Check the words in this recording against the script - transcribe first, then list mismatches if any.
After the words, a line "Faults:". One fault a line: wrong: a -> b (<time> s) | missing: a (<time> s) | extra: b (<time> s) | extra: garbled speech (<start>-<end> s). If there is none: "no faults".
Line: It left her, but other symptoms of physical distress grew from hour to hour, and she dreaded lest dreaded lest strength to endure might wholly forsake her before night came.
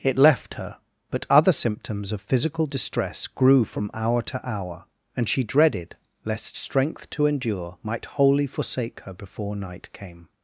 It left her, but other symptoms of physical distress grew from hour to hour, and she dreaded lest strength to endure might wholly forsake her before night came.
Faults:
missing: dreaded lest (6.6 s)